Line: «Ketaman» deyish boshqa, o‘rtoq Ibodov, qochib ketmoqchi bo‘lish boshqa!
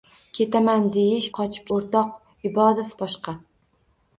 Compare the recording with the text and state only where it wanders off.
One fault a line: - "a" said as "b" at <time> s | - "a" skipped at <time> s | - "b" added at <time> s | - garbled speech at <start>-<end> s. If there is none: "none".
- "boshqa" said as "qochib" at 1.4 s
- "qochib ketmoqchi bo‘lish" skipped at 2.9 s